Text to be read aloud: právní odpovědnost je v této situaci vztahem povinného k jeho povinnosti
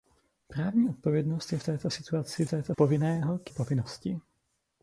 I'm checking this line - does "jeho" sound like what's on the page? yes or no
no